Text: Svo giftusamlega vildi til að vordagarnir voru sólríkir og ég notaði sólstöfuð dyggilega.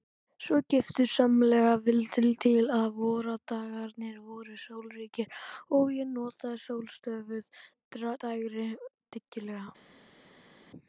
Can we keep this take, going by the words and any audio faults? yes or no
no